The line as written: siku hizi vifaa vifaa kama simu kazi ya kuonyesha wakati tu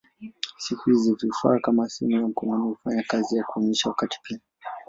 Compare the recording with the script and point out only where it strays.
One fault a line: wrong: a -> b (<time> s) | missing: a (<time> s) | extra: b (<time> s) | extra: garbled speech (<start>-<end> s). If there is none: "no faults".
missing: vifaa (1.6 s)
extra: ya mkononi hufanya (2.1 s)
wrong: tu -> pia (4.2 s)